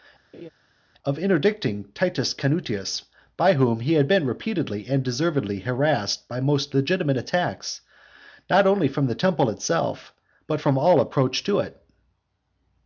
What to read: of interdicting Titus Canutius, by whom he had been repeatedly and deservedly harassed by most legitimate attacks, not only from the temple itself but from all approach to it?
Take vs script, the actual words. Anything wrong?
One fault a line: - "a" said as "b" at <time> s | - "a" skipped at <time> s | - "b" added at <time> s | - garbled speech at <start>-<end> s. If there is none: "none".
none